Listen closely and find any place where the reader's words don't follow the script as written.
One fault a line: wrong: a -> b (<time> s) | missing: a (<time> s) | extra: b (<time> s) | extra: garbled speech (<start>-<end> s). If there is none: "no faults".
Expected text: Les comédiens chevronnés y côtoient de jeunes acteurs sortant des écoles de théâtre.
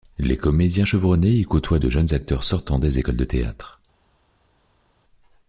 no faults